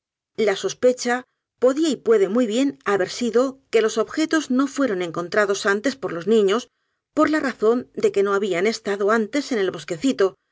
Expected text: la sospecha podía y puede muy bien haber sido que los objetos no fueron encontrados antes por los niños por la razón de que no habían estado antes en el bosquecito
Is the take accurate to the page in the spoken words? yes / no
yes